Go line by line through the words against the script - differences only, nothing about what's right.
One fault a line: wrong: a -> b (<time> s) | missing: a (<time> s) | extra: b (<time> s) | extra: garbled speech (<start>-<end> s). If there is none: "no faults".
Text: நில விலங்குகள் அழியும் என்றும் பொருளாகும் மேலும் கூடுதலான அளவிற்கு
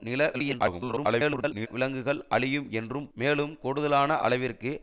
extra: garbled speech (0.3-1.7 s)
missing: பொருளாகும் (3.1 s)